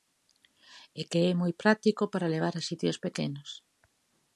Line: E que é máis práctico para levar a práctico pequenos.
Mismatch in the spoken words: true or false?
true